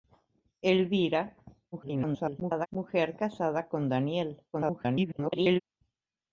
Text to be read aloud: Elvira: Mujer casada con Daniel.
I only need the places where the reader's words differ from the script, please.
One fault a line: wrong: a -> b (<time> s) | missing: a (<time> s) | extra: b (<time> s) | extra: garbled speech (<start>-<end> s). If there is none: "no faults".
extra: garbled speech (1.7-2.7 s)
extra: garbled speech (4.5-5.6 s)